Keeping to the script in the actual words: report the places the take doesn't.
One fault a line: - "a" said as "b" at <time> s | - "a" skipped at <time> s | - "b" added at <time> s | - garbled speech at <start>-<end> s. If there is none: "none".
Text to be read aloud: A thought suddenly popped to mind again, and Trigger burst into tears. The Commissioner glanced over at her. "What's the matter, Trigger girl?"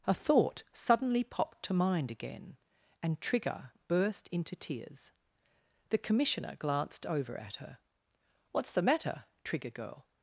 none